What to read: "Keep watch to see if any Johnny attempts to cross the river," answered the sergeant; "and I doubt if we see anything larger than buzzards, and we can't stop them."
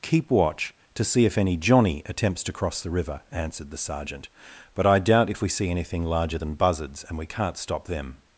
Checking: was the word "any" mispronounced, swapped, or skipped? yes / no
no